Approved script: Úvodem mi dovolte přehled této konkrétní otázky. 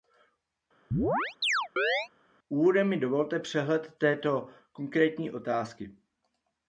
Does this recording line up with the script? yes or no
yes